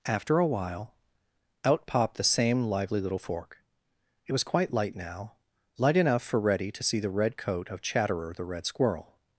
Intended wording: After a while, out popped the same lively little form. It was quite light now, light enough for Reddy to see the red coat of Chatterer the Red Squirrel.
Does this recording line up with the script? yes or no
no